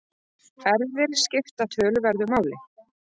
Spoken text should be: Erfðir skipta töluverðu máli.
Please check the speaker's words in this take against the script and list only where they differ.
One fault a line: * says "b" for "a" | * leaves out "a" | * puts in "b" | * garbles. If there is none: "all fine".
all fine